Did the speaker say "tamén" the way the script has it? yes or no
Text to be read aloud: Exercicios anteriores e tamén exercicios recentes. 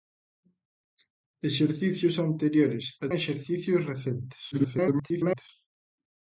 no